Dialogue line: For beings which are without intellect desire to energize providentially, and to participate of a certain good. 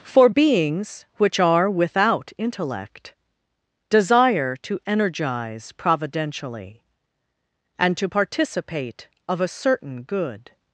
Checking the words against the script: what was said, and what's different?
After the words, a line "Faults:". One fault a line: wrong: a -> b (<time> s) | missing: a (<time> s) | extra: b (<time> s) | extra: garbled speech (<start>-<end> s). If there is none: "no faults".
For beings which are without intellect desire to energize providentially, and to participate of a certain good.
Faults:
no faults